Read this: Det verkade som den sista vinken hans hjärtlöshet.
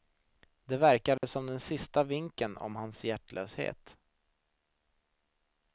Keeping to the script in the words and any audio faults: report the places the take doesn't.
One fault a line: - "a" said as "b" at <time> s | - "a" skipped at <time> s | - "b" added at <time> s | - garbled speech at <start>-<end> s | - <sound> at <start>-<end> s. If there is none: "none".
- dropout at 1.2-1.2 s
- "om" added at 2.6 s